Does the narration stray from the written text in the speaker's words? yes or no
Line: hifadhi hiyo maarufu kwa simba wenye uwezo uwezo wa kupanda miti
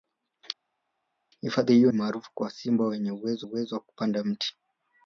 no